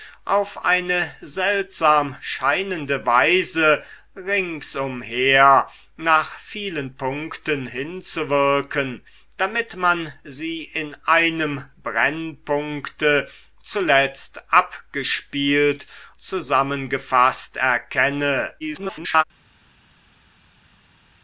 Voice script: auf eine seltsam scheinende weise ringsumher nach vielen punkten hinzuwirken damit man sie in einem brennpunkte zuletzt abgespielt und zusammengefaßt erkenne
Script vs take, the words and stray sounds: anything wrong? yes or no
yes